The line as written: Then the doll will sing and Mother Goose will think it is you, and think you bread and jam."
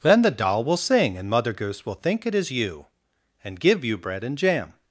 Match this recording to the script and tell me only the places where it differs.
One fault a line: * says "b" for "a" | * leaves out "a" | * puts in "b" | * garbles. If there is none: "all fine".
* says "give" for "think"